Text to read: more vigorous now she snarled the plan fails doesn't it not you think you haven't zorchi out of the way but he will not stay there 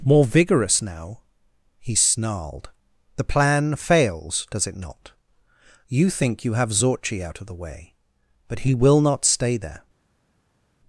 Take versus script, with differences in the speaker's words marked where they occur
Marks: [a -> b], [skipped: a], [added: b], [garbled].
more vigorous now [she -> he] snarled the plan fails [doesn't -> does] it not you think you [haven't -> have] zorchi out of the way but he will not stay there